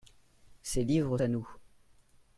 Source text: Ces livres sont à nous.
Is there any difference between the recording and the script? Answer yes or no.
yes